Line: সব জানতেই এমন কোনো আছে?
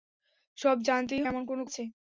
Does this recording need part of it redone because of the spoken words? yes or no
no